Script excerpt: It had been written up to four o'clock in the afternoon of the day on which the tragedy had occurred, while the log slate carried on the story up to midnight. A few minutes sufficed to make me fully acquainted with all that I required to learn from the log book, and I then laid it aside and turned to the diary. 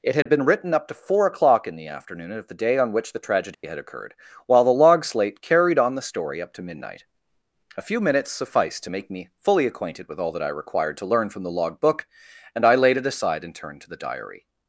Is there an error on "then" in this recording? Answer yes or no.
yes